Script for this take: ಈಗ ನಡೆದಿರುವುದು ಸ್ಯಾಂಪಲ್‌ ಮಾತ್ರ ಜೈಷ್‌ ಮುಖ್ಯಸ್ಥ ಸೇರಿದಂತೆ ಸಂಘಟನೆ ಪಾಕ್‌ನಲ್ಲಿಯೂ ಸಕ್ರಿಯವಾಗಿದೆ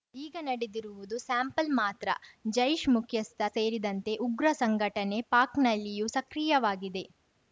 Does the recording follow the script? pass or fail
fail